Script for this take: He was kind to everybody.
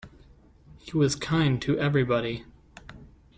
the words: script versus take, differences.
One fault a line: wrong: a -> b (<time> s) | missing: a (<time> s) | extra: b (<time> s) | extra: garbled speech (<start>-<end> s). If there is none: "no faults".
no faults